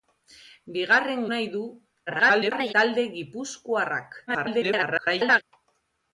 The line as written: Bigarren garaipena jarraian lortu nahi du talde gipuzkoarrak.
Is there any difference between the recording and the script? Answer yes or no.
yes